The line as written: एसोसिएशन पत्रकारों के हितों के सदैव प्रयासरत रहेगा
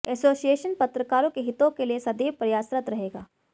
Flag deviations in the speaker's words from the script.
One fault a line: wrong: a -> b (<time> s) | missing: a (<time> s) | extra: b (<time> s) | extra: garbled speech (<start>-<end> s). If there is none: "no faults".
extra: लिए (1.9 s)